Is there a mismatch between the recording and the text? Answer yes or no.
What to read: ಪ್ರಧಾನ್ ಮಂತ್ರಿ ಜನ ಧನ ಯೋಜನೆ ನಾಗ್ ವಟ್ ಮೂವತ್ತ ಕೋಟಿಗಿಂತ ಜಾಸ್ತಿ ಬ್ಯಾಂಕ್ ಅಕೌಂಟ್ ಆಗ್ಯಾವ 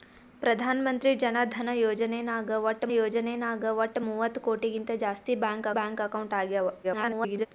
yes